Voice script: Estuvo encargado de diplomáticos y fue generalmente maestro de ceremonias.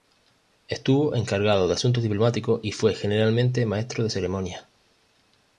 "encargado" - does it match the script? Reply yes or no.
yes